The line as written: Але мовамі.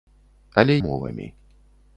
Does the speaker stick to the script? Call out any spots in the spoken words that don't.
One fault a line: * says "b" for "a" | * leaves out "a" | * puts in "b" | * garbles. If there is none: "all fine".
all fine